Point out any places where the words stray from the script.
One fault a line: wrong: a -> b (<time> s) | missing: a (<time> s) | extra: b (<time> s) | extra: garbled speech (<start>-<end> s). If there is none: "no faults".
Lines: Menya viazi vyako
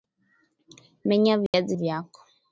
no faults